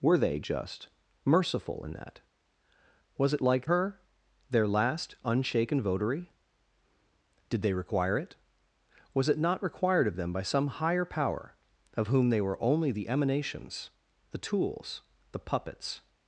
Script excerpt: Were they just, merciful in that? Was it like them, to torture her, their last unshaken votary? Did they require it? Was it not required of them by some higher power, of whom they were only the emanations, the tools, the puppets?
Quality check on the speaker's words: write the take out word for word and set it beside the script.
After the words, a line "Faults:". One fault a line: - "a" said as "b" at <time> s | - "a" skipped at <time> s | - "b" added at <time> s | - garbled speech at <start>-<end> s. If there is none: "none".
Were they just, merciful in that? Was it like her, their last unshaken votary? Did they require it? Was it not required of them by some higher power, of whom they were only the emanations, the tools, the puppets?
Faults:
- "them to torture" skipped at 3.7 s